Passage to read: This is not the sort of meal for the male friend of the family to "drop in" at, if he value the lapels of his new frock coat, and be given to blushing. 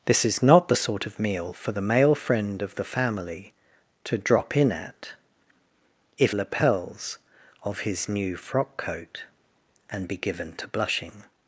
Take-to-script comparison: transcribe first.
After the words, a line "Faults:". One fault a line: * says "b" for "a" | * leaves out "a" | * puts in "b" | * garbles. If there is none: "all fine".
This is not the sort of meal for the male friend of the family to "drop in" at, if lapels of his new frock coat, and be given to blushing.
Faults:
* leaves out "he value the"